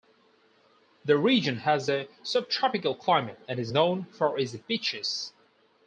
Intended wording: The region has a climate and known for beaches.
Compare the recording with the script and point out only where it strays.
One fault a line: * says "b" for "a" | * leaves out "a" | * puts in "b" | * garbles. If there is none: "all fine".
* puts in "subtropical"
* puts in "is"
* puts in "its"